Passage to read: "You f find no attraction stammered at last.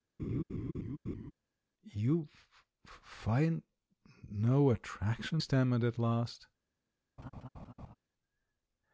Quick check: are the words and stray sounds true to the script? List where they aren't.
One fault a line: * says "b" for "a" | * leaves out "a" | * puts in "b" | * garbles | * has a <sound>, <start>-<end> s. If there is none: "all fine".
* has a laugh, 0.2-1.3 s
* has a laugh, 7.2-7.9 s